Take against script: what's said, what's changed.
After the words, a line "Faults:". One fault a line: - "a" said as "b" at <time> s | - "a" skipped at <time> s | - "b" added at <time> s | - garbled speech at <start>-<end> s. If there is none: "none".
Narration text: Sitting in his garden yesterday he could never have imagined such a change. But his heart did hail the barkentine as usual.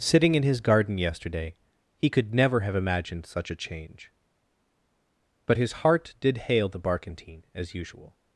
Sitting in his garden yesterday he could never have imagined such a change. But his heart did hail the barkentine as usual.
Faults:
none